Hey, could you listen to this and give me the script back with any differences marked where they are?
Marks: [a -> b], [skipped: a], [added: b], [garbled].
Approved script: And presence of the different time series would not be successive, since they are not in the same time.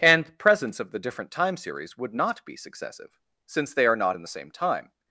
And presence of the different time series would not be successive, since they are not in the same time.